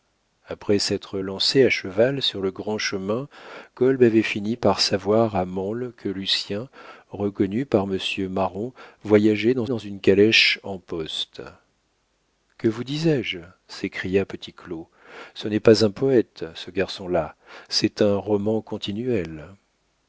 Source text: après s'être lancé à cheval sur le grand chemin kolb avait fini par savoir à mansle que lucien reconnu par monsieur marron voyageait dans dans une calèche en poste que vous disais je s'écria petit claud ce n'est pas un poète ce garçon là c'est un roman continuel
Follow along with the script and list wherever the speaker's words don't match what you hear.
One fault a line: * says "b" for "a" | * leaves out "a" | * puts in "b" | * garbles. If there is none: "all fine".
all fine